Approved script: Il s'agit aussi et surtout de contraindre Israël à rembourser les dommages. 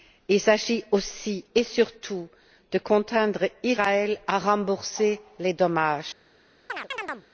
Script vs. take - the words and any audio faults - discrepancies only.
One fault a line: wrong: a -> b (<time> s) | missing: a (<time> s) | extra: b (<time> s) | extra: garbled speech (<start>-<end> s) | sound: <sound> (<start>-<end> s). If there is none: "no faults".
sound: chirp (6.7-7.3 s)